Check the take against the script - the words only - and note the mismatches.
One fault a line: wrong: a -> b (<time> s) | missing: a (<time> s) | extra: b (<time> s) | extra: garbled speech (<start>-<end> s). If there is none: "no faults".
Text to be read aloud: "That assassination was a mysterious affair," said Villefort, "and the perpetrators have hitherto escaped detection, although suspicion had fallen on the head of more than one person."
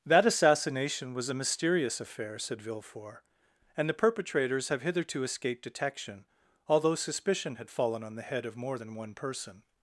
no faults